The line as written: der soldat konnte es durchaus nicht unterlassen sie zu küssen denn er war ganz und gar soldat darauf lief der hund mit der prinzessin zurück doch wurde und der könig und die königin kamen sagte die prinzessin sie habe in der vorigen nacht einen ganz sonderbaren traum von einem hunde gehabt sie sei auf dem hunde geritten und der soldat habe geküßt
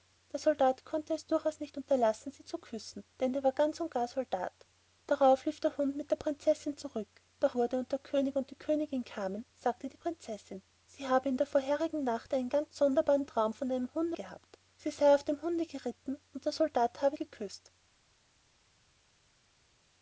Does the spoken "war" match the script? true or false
true